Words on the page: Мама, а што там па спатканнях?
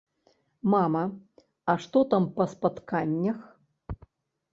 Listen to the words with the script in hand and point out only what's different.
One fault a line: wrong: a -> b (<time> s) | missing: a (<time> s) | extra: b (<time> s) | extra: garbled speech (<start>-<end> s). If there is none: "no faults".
no faults